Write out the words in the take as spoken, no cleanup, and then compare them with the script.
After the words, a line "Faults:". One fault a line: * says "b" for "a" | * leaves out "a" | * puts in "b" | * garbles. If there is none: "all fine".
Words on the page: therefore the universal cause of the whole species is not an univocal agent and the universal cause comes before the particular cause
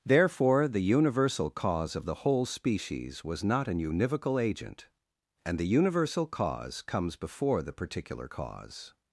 therefore the universal cause of the whole species was not an univocal agent and the universal cause comes before the particular cause
Faults:
* says "was" for "is"